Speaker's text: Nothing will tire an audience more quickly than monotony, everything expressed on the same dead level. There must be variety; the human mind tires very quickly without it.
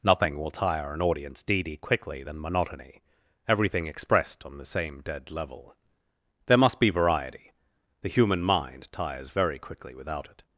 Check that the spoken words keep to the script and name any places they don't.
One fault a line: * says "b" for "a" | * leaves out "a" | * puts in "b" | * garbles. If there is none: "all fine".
* says "deedy" for "more"